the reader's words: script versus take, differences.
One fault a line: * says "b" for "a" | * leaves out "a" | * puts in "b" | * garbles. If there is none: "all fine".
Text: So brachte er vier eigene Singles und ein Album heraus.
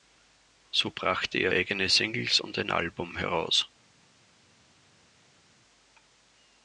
* leaves out "vier"